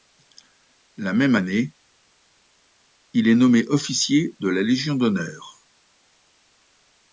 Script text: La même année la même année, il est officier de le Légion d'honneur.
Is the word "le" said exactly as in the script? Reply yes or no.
no